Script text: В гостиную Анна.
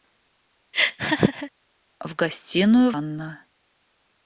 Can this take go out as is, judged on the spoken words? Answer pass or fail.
pass